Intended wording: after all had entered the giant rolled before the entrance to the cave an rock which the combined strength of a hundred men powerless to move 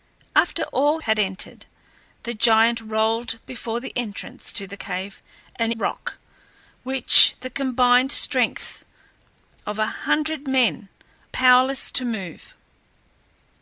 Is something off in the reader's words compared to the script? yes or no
no